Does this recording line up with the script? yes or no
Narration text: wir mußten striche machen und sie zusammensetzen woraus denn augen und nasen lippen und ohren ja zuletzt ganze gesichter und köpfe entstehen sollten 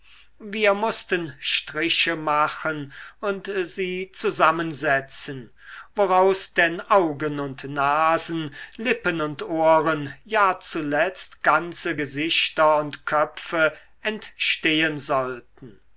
yes